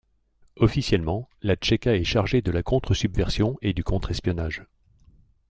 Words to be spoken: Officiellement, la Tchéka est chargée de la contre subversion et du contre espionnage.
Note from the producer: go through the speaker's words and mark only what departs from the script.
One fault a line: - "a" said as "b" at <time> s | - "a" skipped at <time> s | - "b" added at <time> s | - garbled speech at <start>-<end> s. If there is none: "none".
none